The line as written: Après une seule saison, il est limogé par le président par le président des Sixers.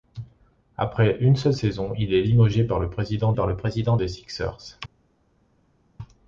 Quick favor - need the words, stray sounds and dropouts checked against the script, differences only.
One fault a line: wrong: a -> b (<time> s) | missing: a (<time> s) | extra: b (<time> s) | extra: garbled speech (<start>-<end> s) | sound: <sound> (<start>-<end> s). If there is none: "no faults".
no faults